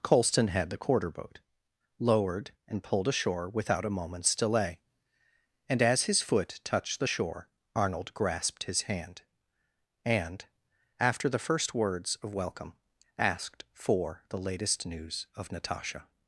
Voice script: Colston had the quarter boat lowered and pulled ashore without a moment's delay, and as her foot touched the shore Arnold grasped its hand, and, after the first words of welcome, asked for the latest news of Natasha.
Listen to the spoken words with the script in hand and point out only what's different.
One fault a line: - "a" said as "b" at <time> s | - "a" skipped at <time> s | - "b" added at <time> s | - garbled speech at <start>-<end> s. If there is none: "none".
- "her" said as "his" at 6.0 s
- "its" said as "his" at 8.6 s